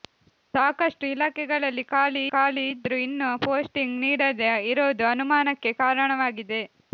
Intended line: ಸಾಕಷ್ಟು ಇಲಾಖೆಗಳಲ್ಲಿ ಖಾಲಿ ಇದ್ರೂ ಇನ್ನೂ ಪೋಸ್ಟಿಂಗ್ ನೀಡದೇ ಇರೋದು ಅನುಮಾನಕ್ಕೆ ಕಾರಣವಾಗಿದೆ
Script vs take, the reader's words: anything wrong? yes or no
yes